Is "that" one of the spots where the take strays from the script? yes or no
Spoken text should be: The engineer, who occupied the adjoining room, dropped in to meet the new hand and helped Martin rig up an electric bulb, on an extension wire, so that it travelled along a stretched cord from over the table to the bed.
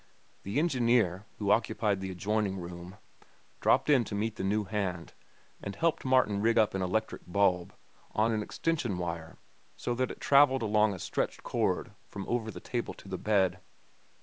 no